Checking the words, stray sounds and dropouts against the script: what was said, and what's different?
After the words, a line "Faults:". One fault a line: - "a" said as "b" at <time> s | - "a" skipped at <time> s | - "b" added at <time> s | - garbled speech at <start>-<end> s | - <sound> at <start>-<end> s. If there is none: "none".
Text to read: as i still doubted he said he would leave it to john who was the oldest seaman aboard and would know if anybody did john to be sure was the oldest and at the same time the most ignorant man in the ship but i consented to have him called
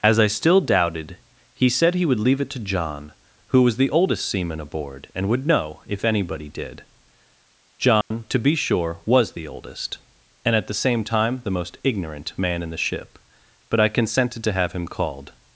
as i still doubted he said he would leave it to john who was the oldest seaman aboard and would know if anybody did john to be sure was the oldest and at the same time the most ignorant man in the ship but i consented to have him called
Faults:
- dropout at 8.0-8.1 s